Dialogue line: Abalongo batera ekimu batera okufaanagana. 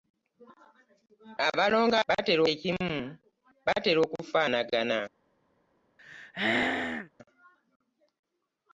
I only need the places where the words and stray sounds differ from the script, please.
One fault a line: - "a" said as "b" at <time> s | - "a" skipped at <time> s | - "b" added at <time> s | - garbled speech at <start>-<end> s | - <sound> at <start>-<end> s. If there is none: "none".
- throat clearing at 6.0-7.1 s